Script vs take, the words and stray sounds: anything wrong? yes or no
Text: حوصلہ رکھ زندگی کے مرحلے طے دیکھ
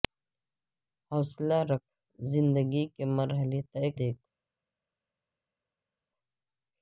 no